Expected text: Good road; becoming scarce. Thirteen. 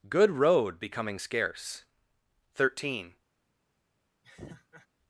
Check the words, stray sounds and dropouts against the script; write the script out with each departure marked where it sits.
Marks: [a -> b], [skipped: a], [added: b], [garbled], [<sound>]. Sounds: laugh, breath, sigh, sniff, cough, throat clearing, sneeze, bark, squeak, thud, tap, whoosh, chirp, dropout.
Good road; becoming scarce. Thirteen. [laugh]